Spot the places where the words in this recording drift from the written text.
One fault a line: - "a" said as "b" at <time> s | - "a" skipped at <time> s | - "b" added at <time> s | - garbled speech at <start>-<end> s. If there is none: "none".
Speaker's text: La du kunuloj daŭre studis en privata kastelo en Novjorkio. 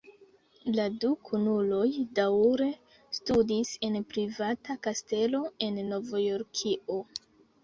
none